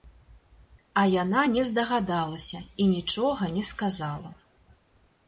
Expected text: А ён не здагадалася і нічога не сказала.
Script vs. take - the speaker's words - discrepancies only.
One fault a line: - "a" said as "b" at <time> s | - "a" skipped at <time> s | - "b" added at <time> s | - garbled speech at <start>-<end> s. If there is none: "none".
- "ён" said as "яна" at 1.2 s